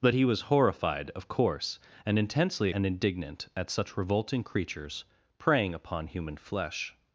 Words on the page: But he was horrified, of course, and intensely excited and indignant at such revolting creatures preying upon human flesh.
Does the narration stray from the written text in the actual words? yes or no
yes